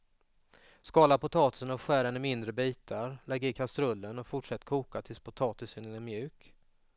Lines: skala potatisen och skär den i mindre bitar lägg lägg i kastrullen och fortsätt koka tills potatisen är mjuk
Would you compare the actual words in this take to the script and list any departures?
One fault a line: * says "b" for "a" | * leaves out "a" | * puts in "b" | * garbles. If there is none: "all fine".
* leaves out "lägg"